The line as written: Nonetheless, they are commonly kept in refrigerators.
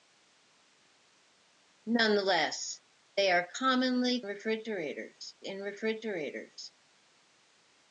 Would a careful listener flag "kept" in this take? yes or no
yes